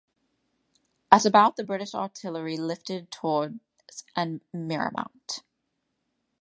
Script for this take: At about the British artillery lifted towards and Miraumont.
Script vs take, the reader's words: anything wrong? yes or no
no